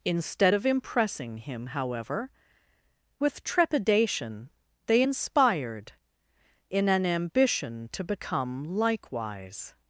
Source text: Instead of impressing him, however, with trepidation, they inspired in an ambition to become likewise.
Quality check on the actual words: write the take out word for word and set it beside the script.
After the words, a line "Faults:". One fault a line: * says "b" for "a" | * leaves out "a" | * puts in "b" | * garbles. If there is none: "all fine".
Instead of impressing him, however, with trepidation, they inspired in an ambition to become likewise.
Faults:
all fine